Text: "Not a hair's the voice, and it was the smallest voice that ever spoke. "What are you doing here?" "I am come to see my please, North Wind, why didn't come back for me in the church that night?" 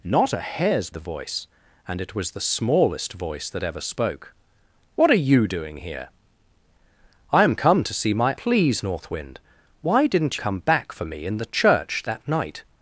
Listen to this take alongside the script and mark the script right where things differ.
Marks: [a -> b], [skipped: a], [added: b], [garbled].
"Not a hair's the voice, and it was the smallest voice that ever spoke. "What are you doing here?" "I am come to see my please, North Wind, why didn't come back for me in the church that night?"